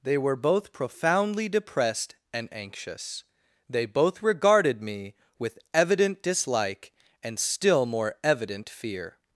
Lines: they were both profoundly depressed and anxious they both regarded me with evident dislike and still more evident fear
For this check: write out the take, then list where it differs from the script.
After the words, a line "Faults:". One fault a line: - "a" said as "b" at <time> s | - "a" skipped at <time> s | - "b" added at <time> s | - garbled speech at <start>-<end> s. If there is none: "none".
they were both profoundly depressed and anxious they both regarded me with evident dislike and still more evident fear
Faults:
none